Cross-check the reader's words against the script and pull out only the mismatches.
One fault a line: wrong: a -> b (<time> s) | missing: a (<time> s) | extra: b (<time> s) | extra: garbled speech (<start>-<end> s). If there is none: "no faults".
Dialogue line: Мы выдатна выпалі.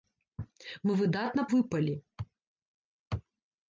no faults